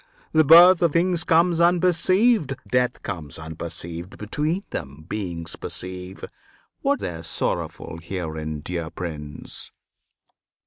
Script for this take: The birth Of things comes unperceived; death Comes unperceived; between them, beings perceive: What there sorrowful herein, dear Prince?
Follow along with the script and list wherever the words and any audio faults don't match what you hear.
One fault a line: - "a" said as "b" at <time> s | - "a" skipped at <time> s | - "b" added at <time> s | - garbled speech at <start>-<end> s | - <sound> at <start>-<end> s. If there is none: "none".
none